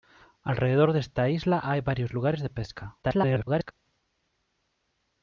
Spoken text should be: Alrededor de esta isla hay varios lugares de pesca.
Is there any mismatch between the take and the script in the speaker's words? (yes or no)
yes